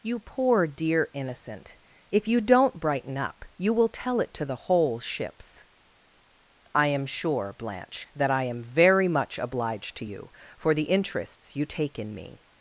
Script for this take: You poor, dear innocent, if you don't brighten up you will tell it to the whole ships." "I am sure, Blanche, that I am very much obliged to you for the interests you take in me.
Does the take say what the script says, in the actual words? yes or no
yes